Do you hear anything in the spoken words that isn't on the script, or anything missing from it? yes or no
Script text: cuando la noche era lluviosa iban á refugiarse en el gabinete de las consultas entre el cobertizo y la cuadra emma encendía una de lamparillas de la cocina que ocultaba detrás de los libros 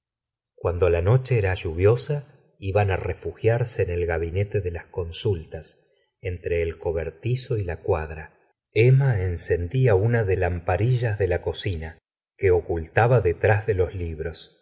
no